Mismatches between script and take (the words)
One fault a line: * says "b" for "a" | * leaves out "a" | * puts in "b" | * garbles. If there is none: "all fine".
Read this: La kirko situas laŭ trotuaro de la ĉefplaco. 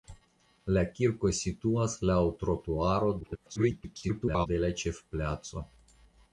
* garbles